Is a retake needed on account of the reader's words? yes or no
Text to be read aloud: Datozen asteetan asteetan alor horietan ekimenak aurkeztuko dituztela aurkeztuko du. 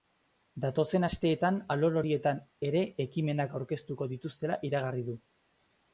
yes